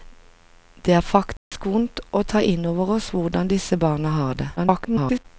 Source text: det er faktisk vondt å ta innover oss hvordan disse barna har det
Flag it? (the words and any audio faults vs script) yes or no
yes